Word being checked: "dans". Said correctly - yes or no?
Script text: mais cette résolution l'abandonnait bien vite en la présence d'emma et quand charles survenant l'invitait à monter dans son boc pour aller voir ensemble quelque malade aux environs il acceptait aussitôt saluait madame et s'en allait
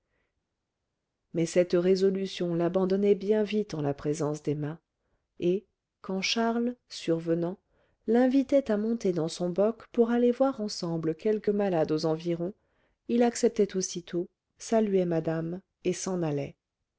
yes